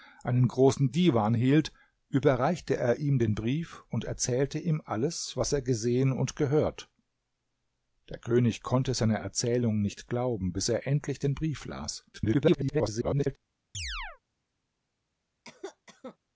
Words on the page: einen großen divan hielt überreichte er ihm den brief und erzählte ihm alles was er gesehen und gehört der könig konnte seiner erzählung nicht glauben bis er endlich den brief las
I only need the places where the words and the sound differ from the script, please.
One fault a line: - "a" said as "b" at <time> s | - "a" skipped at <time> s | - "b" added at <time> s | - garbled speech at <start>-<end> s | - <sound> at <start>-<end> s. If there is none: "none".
- garbled speech at 12.1-13.4 s
- chirp at 13.7-14.2 s
- cough at 15.4-16.2 s